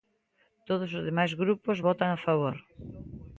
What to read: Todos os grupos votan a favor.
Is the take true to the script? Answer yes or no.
no